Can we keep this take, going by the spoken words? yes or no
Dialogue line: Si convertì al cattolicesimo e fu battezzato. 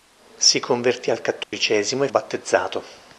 no